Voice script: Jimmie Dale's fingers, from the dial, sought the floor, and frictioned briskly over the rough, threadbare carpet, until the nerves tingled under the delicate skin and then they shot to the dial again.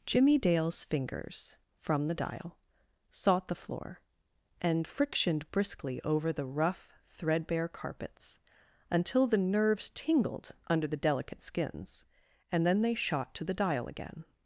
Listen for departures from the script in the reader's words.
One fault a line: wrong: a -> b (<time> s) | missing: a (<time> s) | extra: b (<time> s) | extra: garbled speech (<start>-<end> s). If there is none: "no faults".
wrong: carpet -> carpets (7.7 s)
wrong: skin -> skins (11.4 s)